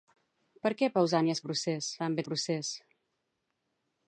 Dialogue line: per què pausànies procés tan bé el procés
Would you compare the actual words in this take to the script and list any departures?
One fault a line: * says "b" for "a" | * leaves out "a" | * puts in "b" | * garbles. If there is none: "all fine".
all fine